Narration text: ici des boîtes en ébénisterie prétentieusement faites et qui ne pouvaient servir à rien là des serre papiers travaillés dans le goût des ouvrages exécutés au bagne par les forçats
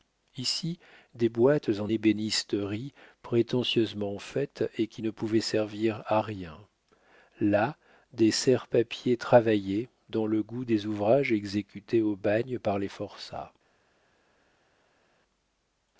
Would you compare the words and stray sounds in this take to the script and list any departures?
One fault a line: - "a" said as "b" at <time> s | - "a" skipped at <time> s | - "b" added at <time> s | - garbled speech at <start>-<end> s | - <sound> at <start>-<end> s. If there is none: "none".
none